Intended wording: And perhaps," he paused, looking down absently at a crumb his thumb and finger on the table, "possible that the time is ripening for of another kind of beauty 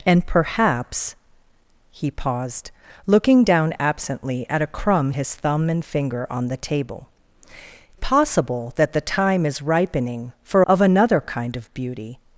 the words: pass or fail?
pass